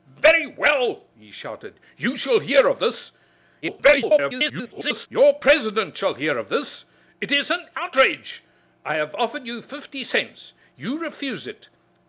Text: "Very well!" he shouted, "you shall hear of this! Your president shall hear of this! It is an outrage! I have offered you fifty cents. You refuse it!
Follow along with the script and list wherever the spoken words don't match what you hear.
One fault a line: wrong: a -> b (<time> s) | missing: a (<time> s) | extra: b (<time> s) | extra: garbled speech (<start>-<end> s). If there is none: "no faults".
extra: garbled speech (3.6-5.1 s)